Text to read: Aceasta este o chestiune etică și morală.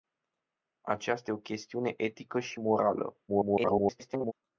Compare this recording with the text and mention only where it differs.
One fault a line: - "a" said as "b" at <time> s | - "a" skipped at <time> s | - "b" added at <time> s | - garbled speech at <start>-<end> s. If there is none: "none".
- "este" skipped at 1.3 s
- garbled speech at 3.3-4.3 s